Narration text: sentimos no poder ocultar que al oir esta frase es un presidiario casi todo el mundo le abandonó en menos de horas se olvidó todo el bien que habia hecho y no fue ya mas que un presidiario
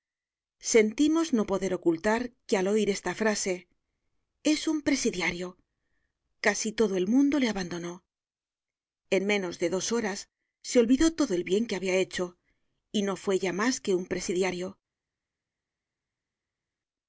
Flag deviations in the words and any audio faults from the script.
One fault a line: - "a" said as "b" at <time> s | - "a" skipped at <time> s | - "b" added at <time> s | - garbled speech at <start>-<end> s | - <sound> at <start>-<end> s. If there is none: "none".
- "dos" added at 9.7 s